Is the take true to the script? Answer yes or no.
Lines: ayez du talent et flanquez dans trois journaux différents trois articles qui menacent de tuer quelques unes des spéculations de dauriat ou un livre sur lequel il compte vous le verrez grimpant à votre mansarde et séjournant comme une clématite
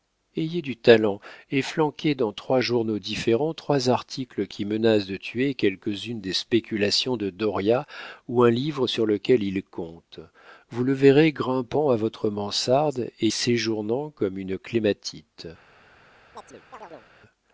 yes